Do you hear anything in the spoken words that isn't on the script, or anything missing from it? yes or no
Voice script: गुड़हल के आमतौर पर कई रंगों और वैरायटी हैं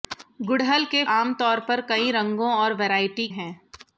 no